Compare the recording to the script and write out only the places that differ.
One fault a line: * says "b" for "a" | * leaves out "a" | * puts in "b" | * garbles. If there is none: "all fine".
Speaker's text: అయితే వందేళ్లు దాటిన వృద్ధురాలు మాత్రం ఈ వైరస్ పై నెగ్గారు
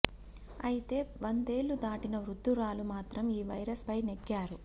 all fine